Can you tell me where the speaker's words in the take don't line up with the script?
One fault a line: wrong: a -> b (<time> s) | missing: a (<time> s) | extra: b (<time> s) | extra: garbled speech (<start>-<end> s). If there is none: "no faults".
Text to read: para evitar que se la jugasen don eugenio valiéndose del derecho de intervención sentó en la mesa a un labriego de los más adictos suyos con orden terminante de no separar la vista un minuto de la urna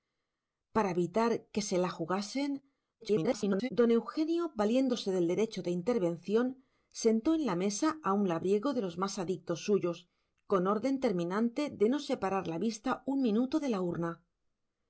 extra: garbled speech (3.0-3.7 s)